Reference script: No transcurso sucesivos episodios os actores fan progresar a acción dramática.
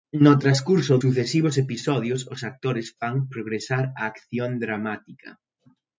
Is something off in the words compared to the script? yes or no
no